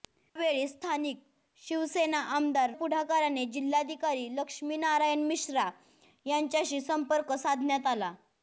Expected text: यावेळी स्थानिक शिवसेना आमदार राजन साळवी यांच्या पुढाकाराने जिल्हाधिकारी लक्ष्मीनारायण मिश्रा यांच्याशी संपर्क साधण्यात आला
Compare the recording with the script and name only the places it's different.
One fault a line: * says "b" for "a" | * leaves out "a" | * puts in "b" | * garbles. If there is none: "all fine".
* leaves out "राजन साळवी यांच्या"